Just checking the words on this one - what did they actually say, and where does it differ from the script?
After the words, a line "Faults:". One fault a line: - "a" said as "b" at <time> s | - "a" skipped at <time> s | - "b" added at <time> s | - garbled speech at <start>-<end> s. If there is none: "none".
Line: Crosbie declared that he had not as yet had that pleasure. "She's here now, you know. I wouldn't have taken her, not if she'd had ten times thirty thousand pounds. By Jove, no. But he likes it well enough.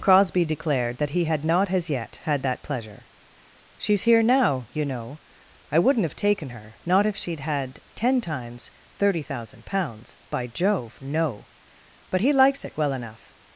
Crosbie declared that he had not as yet had that pleasure. "She's here now, you know. I wouldn't have taken her, not if she'd had ten times thirty thousand pounds. By Jove, no. But he likes it well enough.
Faults:
none